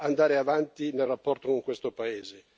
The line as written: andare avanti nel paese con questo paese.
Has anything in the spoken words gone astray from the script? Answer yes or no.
yes